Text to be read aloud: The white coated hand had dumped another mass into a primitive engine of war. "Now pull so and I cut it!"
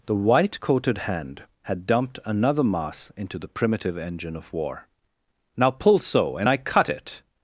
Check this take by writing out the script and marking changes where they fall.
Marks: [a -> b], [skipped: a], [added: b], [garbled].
The white coated hand had dumped another mass into [a -> the] primitive engine of war. "Now pull so and I cut it!"